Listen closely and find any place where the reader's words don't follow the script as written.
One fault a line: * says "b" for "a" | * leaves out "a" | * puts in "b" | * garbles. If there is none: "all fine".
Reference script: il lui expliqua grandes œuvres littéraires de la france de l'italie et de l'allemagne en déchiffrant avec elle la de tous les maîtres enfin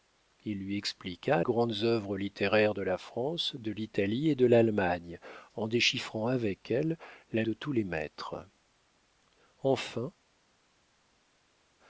all fine